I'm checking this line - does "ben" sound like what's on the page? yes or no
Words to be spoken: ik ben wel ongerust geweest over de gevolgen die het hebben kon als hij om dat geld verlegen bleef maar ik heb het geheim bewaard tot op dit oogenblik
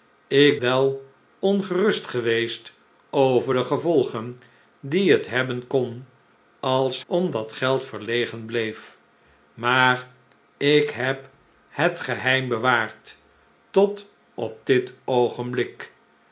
no